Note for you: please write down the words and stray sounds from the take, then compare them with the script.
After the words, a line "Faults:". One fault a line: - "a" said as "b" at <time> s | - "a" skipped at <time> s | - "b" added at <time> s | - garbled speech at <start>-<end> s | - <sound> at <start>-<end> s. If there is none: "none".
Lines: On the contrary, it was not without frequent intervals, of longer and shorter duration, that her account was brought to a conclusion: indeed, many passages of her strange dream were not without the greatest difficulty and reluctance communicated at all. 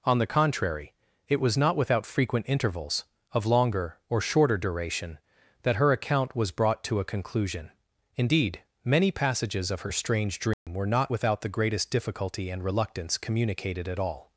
On the contrary, it was not without frequent intervals, of longer or shorter duration, that her account was brought to a conclusion: indeed, many passages of her strange dream were not without the greatest difficulty and reluctance communicated at all.
Faults:
- "and" said as "or" at 4.1 s
- dropout at 10.5-10.7 s